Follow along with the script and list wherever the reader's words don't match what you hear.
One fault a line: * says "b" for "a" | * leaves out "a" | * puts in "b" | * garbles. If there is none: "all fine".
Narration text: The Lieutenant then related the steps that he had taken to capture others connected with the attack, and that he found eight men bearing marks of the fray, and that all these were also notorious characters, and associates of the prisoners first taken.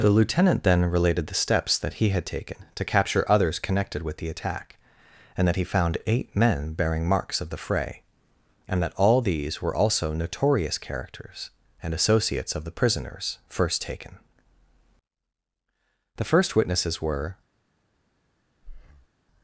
* puts in "The first witnesses were"